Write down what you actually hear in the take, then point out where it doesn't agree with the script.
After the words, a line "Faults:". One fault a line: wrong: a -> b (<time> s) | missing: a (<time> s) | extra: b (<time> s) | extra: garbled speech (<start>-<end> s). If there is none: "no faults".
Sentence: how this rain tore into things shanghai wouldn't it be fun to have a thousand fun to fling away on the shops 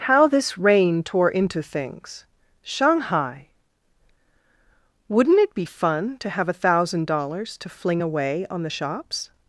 how this rain tore into things shanghai wouldn't it be fun to have a thousand dollars to fling away on the shops
Faults:
wrong: fun -> dollars (7.1 s)